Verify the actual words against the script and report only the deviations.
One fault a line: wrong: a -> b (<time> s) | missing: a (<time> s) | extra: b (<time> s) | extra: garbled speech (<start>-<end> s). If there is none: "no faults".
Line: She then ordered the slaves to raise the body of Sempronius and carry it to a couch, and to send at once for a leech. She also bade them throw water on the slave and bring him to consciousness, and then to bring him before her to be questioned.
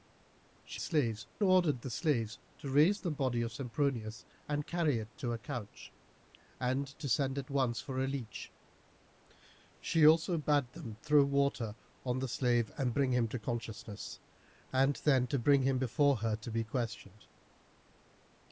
wrong: then -> slaves (0.8 s)